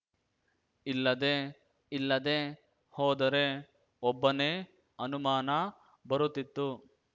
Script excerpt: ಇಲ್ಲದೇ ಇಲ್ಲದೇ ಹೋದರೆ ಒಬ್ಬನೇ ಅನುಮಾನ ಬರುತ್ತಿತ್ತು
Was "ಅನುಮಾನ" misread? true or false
false